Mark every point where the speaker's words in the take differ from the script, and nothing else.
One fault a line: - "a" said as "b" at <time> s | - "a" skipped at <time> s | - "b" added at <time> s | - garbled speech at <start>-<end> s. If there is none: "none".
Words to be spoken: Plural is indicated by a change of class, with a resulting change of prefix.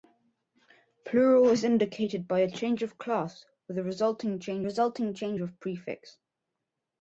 - "resulting change" added at 4.6 s